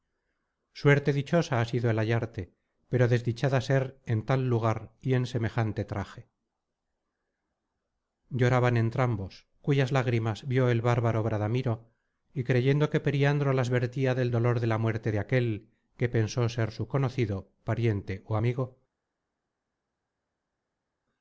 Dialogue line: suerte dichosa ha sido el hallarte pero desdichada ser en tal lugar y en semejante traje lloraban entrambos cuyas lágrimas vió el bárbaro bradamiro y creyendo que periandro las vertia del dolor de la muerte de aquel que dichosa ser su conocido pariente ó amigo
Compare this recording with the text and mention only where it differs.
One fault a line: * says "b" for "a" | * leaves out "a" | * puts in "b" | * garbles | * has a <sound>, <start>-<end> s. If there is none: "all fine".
* says "pensó" for "dichosa"